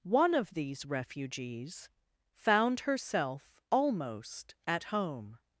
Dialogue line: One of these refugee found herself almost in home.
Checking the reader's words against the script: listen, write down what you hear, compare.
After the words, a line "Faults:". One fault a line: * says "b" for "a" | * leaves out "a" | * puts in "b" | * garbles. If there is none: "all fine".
One of these refugees found herself almost at home.
Faults:
* says "refugees" for "refugee"
* says "at" for "in"